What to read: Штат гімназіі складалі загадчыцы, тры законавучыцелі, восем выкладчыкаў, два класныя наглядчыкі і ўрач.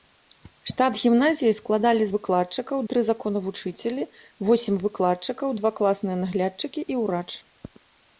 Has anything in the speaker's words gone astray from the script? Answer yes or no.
yes